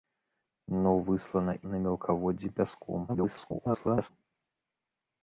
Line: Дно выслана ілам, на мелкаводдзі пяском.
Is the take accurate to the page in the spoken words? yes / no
no